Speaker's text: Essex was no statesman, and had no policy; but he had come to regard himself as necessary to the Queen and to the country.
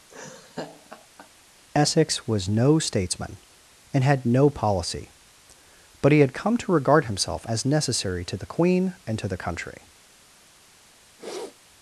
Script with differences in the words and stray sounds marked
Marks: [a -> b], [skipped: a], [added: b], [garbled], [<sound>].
[laugh] Essex was no statesman, and had no policy; but he had come to regard himself as necessary to the Queen and to the country. [sniff]